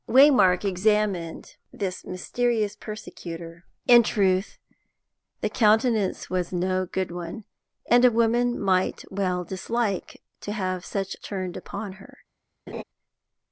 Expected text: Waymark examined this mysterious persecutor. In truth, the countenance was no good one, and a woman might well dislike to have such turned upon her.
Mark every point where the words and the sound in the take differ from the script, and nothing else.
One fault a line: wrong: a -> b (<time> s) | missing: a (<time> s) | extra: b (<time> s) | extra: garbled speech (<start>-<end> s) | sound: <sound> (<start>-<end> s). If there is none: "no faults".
sound: laugh (12.7-12.8 s)